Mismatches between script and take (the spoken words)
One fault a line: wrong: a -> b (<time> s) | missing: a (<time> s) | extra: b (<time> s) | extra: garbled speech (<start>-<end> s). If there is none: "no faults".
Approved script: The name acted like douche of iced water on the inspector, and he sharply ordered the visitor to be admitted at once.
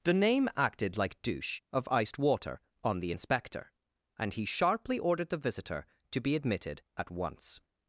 no faults